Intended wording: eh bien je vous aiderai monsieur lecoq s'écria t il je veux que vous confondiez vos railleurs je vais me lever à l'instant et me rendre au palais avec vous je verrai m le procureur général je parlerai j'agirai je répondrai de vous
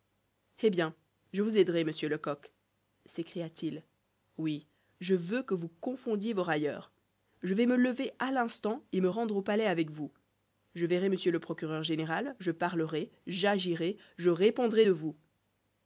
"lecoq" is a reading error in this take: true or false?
false